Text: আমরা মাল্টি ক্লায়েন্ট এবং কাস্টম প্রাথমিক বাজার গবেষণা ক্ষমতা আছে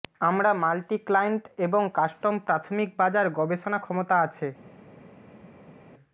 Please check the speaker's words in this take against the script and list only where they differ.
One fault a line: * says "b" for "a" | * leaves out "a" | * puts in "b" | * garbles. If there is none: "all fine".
all fine